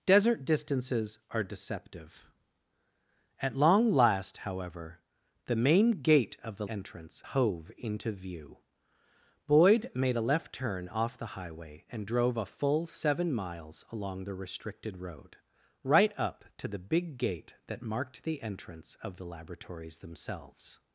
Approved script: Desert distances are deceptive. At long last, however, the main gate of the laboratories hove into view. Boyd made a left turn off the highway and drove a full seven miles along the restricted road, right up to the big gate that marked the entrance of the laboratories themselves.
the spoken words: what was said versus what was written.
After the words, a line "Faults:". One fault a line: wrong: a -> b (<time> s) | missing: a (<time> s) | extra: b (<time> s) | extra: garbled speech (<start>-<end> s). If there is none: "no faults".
Desert distances are deceptive. At long last, however, the main gate of the entrance hove into view. Boyd made a left turn off the highway and drove a full seven miles along the restricted road, right up to the big gate that marked the entrance of the laboratories themselves.
Faults:
wrong: laboratories -> entrance (6.7 s)